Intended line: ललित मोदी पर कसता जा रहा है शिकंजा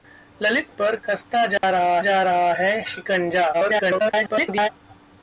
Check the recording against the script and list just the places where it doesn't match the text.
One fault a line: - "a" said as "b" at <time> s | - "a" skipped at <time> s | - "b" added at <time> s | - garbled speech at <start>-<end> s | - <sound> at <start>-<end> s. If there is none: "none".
- "मोदी" skipped at 0.8 s
- dropout at 1.6-1.6 s
- "जा रहा" added at 2.0 s
- garbled speech at 3.5-4.7 s